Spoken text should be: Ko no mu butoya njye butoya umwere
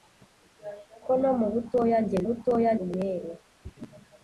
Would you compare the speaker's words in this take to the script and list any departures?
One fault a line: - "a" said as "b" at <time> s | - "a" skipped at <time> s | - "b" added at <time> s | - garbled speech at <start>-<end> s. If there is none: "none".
none